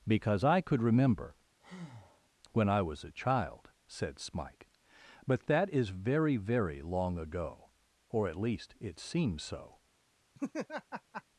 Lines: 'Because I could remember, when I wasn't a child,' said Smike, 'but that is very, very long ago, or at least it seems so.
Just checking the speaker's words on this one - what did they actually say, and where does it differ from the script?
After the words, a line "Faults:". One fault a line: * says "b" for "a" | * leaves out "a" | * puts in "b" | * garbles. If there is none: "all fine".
'Because I could remember, when I was a child,' said Smike, 'but that is very, very long ago, or at least it seems so.
Faults:
* says "was" for "wasn't"